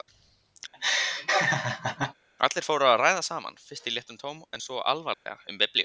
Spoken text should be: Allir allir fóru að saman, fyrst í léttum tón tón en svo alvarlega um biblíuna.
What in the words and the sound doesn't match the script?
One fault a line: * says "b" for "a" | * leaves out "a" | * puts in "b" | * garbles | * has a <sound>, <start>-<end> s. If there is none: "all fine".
* has a laugh, 0.7-2.1 s
* leaves out "allir"
* puts in "ræða"
* leaves out "tón"
* has a dropout, 5.1-5.3 s